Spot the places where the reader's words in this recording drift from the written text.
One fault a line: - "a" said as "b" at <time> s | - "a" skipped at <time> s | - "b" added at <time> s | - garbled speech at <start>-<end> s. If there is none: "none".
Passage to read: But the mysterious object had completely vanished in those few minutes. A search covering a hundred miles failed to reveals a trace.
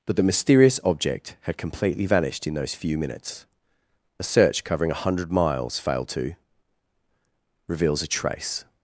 none